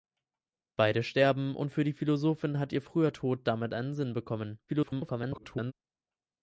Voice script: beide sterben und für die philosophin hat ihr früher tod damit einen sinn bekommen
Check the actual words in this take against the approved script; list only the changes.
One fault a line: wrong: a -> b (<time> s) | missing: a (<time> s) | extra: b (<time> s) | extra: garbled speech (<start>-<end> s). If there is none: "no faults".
extra: garbled speech (4.7-5.7 s)